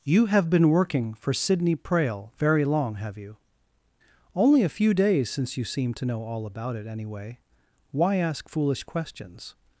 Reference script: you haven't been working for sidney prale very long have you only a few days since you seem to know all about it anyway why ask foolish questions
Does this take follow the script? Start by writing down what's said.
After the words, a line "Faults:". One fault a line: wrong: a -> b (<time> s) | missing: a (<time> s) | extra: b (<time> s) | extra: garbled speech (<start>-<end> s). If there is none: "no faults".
you have been working for sidney prale very long have you only a few days since you seem to know all about it anyway why ask foolish questions
Faults:
wrong: haven't -> have (0.2 s)